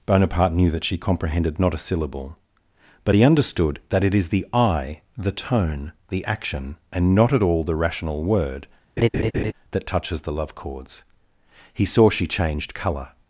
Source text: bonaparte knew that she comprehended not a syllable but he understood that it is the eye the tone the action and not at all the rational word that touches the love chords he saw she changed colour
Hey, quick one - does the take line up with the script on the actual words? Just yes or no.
yes